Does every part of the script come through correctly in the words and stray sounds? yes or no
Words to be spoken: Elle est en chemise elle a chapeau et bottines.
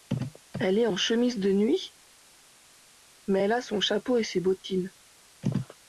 no